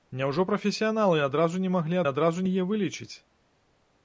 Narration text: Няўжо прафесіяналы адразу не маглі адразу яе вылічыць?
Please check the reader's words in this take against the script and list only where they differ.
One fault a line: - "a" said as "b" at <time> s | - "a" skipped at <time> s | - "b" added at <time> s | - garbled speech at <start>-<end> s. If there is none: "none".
none